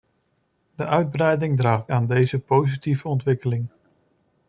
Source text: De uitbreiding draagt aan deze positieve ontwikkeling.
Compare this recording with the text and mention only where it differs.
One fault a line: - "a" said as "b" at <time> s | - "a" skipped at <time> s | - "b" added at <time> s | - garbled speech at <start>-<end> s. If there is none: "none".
none